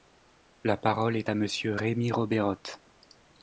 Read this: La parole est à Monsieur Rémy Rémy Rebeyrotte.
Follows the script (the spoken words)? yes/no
no